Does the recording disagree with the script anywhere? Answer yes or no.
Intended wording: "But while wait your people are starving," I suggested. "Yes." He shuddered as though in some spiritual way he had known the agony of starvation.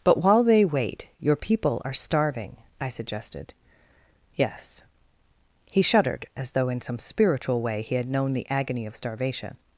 yes